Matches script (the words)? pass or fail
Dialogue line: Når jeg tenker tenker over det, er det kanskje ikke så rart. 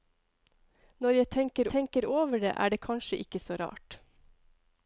pass